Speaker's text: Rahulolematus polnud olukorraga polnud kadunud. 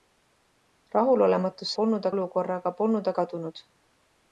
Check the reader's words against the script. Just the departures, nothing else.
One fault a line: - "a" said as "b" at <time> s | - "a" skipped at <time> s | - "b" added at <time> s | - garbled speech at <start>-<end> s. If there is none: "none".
none